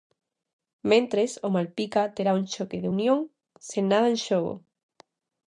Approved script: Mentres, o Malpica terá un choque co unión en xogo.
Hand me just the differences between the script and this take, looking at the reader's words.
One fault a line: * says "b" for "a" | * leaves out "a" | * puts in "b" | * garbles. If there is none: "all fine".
* puts in "sen nada"